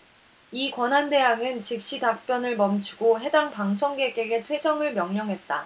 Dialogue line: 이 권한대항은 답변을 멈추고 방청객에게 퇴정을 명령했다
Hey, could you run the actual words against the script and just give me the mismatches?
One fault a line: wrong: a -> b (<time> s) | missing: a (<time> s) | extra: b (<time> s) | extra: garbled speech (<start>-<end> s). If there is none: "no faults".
extra: 즉시 (1.6 s)
extra: 해당 (3.2 s)